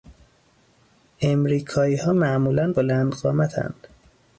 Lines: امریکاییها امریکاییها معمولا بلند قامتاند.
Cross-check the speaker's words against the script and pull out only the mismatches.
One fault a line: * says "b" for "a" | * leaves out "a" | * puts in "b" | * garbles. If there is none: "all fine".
* leaves out "امریکاییها"